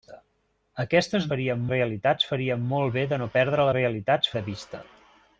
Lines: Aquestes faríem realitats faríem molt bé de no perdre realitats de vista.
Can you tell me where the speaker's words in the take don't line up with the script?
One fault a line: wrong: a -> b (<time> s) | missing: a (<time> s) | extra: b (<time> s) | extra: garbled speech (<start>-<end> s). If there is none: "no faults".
no faults